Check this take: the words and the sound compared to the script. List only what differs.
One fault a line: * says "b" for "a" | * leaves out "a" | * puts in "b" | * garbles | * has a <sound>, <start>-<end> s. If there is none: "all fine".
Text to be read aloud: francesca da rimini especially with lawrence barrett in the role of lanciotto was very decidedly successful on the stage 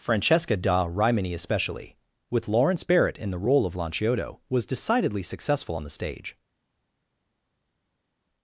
* leaves out "very"